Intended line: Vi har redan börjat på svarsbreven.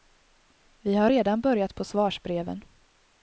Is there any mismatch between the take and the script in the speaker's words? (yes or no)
no